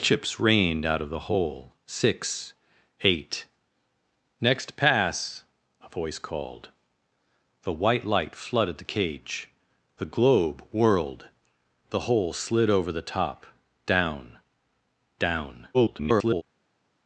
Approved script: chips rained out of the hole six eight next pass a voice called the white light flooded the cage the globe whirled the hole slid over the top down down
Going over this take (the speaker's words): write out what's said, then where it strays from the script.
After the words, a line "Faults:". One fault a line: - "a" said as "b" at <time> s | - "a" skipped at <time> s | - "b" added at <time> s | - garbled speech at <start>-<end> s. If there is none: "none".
chips rained out of the hole six eight next pass a voice called the white light flooded the cage the globe whirled the hole slid over the top down down [garbled]
Faults:
- garbled speech at 15.7-16.4 s